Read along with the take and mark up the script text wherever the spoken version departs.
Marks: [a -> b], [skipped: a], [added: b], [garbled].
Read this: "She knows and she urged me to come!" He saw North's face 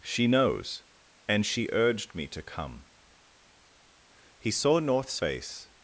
"She knows and she urged me to come!" He saw North's face